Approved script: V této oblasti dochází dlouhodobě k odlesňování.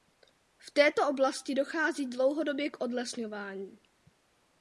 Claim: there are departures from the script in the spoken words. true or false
false